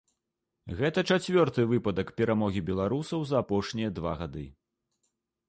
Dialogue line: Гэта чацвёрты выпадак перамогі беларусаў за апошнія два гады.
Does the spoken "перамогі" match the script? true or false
true